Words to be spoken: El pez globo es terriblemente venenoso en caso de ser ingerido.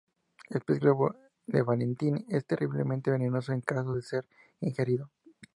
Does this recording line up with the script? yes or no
no